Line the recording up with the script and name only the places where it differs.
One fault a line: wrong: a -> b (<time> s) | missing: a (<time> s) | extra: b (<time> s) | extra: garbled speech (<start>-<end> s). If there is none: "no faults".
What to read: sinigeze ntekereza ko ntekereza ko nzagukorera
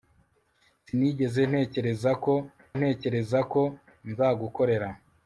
no faults